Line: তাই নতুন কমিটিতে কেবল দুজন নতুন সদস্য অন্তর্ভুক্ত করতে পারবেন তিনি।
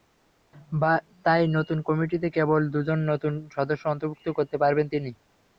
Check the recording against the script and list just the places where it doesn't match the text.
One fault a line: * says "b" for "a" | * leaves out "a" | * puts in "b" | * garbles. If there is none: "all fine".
all fine